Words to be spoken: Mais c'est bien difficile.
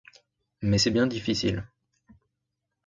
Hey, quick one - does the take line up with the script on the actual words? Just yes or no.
yes